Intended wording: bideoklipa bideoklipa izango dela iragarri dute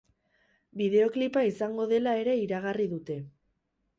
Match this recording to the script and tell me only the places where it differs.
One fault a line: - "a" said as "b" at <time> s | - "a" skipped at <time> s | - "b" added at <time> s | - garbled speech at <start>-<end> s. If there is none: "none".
- "bideoklipa" skipped at 1.4 s
- "ere" added at 2.2 s